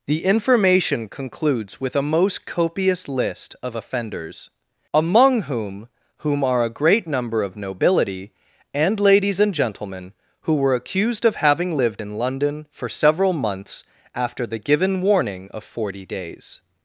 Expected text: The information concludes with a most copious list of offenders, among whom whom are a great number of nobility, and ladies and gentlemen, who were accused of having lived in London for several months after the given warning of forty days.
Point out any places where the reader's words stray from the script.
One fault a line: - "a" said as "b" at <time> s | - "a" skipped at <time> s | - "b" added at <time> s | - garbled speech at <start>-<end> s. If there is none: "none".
none